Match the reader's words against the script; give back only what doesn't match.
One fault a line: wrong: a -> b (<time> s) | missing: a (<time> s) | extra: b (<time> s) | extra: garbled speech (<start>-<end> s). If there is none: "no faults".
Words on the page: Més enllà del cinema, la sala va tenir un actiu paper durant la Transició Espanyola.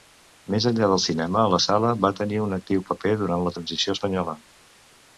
no faults